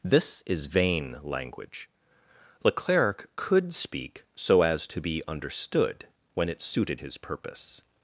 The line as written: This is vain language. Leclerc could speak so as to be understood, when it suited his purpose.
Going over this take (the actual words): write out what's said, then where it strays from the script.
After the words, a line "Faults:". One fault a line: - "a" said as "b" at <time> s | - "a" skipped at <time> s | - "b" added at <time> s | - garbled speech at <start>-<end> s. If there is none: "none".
This is vain language. Leclerc could speak so as to be understood, when it suited his purpose.
Faults:
none